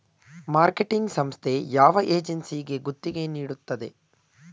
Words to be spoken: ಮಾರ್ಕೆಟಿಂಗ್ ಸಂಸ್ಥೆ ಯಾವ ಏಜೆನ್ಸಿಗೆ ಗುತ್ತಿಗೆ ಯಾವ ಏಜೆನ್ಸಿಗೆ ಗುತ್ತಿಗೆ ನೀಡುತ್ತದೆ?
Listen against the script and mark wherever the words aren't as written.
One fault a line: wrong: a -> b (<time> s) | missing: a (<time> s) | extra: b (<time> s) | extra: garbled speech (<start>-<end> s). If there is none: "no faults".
missing: ಯಾವ ಏಜೆನ್ಸಿಗೆ ಗುತ್ತಿಗೆ (3.3 s)